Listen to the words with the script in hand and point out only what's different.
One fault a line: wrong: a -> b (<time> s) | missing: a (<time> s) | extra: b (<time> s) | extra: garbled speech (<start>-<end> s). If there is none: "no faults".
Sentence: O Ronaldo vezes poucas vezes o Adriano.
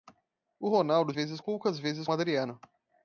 no faults